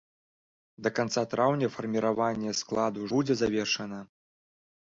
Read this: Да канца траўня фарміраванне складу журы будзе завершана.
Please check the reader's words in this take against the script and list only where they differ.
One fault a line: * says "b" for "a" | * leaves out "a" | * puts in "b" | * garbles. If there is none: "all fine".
* leaves out "журы"